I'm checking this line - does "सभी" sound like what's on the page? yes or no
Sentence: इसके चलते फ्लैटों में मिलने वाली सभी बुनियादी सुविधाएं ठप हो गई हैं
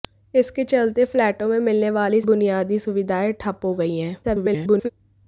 no